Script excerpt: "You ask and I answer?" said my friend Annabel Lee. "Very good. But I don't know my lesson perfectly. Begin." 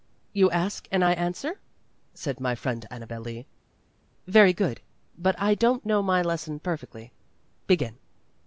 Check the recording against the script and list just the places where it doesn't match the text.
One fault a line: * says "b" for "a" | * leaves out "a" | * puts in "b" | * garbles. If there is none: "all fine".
all fine